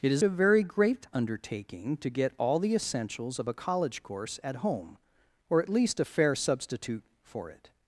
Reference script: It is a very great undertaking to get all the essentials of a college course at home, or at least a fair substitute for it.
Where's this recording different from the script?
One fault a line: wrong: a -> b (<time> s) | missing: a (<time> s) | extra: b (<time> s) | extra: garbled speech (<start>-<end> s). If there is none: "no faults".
no faults